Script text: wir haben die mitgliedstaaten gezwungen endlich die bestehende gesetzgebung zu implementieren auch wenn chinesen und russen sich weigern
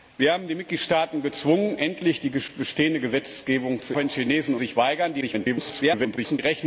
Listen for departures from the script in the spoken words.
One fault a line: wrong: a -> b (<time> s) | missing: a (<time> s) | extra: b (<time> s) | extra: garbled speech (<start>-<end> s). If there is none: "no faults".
missing: implementieren auch (3.9 s)
missing: und russen (4.5 s)
extra: garbled speech (5.2-6.4 s)